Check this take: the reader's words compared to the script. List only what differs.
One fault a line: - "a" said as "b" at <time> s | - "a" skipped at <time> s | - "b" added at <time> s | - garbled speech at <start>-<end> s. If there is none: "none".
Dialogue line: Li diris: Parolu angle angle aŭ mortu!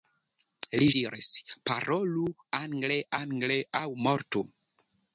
none